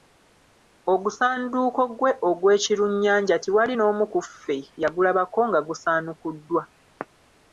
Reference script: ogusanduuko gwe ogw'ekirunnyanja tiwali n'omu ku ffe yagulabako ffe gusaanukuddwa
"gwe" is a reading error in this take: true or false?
false